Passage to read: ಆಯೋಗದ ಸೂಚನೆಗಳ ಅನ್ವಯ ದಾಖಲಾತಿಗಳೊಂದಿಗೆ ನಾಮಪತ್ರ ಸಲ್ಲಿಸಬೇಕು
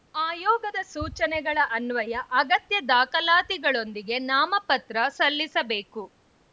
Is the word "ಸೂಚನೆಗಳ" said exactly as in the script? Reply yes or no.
yes